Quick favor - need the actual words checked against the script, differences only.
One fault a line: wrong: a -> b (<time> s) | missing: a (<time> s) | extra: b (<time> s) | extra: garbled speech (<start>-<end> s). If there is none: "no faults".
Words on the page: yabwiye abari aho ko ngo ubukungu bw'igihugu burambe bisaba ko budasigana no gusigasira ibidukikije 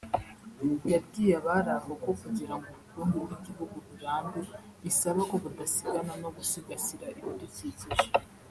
extra: kugira (2.2 s)